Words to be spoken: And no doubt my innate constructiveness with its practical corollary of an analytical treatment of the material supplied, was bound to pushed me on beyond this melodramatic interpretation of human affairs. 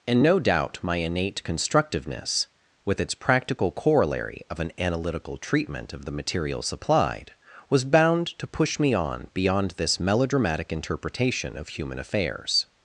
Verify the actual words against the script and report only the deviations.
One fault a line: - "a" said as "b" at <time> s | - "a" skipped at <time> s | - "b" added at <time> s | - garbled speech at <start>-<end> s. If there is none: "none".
- "pushed" said as "push" at 8.5 s